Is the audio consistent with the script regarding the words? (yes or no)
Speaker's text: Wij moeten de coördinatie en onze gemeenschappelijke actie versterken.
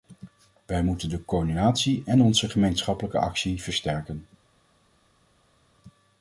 yes